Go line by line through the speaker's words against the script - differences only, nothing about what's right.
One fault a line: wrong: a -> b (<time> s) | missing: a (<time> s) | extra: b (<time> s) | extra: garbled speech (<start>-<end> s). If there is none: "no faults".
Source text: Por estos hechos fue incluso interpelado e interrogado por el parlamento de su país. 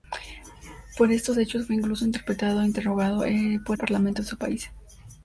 missing: el (3.8 s)